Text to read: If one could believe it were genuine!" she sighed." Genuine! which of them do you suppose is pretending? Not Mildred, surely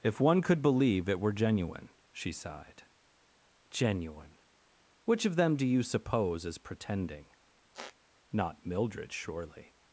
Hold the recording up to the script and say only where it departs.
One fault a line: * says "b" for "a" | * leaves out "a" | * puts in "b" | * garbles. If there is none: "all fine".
all fine